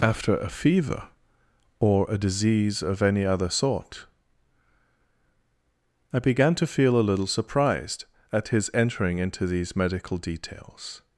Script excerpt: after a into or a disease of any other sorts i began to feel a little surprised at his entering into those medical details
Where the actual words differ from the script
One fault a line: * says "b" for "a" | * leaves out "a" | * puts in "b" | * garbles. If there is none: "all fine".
* says "fever" for "into"
* says "sort" for "sorts"
* says "these" for "those"